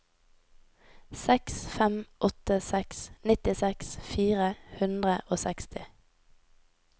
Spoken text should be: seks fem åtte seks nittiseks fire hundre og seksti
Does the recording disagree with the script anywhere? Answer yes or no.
no